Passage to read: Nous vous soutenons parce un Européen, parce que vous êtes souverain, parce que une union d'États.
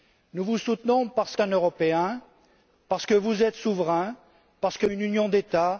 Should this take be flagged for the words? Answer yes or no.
no